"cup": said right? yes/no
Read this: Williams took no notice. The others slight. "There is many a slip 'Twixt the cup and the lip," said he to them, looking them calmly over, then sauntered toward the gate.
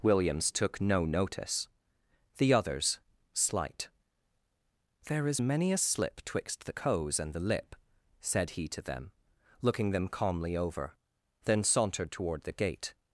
no